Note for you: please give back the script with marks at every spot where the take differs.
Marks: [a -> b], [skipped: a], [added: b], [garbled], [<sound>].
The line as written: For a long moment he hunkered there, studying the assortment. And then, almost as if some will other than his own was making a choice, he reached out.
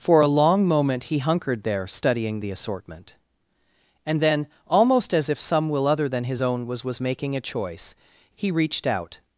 For a long moment he hunkered there, studying the assortment. And then, almost as if some will other than his own was [added: was] making a choice, he reached out.